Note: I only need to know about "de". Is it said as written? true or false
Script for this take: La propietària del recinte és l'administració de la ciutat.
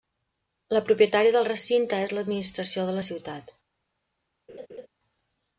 true